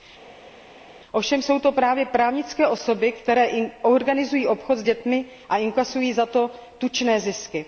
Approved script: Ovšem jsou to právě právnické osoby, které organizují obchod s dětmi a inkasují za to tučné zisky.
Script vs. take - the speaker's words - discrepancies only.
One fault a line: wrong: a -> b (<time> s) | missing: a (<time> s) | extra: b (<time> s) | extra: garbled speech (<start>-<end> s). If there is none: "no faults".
no faults